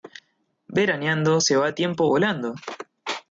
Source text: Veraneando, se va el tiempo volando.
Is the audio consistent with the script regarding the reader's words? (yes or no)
yes